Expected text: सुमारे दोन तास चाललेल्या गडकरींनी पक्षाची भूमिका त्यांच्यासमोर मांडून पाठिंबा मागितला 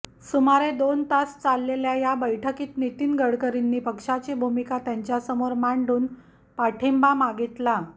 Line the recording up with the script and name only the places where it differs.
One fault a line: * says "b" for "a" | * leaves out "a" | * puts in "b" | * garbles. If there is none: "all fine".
* puts in "या बैठकीत नितीन"